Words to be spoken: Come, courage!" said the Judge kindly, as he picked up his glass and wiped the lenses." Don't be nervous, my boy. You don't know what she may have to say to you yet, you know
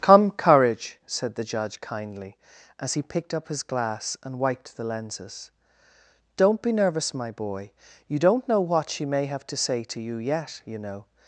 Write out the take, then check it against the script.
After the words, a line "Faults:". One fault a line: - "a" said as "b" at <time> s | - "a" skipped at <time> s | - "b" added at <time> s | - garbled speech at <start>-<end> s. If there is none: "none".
Come, courage!" said the Judge kindly, as he picked up his glass and wiped the lenses." Don't be nervous, my boy. You don't know what she may have to say to you yet, you know
Faults:
none